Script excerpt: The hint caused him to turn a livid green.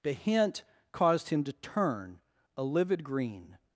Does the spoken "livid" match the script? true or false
true